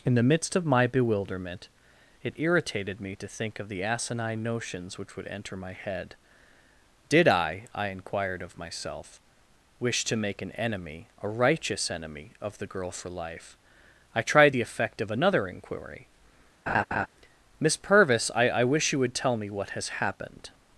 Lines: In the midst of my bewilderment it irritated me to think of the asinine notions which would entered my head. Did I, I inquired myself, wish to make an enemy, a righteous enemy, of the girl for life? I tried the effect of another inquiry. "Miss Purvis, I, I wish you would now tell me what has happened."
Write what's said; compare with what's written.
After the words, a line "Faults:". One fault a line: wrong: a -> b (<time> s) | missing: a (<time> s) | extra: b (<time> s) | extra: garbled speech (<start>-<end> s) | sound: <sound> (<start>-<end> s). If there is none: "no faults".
In the midst of my bewilderment it irritated me to think of the asinine notions which would enter my head. Did I, I inquired of myself, wish to make an enemy, a righteous enemy, of the girl for life? I tried the effect of another inquiry. "Miss Purvis, I, I wish you would tell me what has happened."
Faults:
wrong: entered -> enter (5.3 s)
extra: of (8.4 s)
sound: laugh (16.7-17.1 s)
missing: now (19.1 s)